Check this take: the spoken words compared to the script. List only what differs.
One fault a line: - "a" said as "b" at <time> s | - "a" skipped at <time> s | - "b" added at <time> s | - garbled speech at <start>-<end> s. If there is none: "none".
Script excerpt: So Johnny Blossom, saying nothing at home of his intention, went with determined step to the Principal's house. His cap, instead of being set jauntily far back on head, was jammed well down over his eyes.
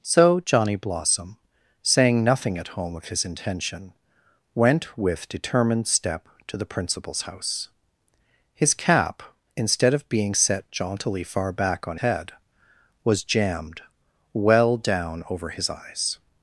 none